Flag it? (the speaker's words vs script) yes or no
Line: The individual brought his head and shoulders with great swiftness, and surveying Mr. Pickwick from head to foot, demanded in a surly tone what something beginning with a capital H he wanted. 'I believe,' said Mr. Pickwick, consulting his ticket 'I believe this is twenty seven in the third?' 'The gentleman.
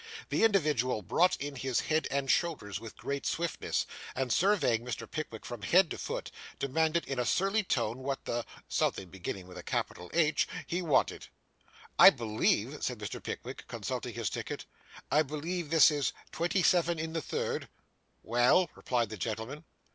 yes